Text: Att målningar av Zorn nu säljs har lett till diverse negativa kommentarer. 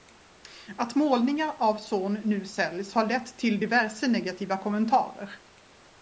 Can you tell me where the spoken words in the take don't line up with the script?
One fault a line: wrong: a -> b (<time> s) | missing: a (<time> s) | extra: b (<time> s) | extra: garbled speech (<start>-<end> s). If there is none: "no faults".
no faults